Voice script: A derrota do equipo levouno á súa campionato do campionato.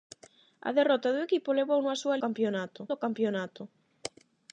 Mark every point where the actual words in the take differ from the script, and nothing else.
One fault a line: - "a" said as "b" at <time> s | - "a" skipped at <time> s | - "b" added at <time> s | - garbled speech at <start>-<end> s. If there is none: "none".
none